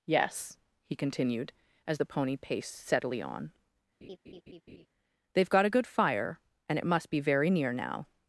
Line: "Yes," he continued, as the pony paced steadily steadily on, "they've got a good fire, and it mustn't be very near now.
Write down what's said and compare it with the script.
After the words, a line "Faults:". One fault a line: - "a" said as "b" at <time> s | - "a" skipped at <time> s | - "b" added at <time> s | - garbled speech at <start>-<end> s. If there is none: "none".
"Yes," he continued, as the pony paced steadily on, "they've got a good fire, and it must be very near now.
Faults:
- "steadily" skipped at 3.2 s
- "mustn't" said as "must" at 6.9 s